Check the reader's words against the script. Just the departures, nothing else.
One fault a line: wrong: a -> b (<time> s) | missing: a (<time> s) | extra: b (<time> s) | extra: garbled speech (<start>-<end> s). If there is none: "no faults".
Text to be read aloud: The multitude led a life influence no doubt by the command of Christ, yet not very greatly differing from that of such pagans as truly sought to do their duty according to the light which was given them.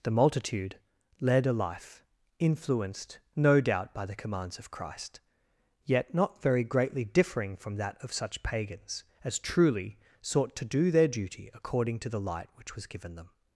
wrong: influence -> influenced (2.4 s)
wrong: command -> commands (4.2 s)